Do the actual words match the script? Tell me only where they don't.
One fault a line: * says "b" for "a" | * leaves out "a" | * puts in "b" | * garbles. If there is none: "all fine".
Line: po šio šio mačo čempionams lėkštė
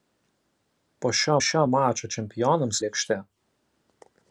all fine